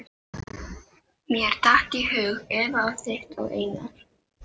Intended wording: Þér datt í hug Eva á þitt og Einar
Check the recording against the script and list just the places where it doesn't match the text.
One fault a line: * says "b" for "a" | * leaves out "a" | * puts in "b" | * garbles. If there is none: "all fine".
* says "Mér" for "Þér"